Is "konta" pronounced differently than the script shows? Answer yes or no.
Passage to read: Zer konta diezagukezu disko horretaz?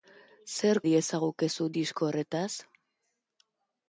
yes